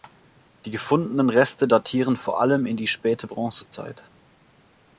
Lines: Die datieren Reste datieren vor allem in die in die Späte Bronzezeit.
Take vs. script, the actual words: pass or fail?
fail